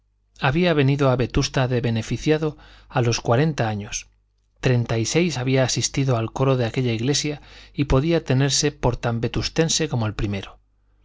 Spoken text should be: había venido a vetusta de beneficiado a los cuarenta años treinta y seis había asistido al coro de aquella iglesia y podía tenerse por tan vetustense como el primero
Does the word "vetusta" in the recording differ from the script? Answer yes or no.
no